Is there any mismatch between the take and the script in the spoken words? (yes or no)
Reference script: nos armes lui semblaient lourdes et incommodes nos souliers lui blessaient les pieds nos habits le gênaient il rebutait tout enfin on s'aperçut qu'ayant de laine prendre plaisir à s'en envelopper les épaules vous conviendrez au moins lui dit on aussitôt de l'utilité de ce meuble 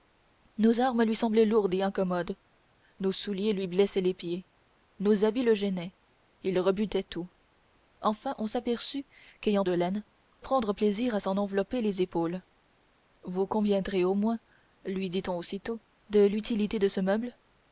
no